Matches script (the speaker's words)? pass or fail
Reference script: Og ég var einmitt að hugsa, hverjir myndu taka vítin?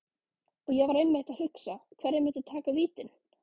pass